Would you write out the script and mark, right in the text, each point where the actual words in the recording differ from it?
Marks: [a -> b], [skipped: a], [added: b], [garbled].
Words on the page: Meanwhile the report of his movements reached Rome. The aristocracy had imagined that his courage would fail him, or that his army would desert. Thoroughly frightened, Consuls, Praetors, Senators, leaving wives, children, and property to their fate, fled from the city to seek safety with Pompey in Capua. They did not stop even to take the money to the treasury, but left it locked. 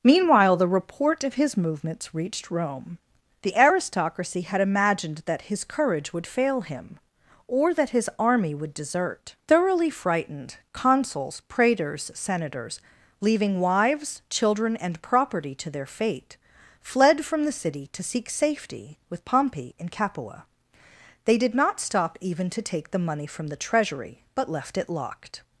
Meanwhile the report of his movements reached Rome. The aristocracy had imagined that his courage would fail him, or that his army would desert. Thoroughly frightened, Consuls, Praetors, Senators, leaving wives, children, and property to their fate, fled from the city to seek safety with Pompey in Capua. They did not stop even to take the money [to -> from] the treasury, but left it locked.